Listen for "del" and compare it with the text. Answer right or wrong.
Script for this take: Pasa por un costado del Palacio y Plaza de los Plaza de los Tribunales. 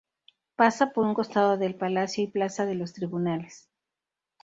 right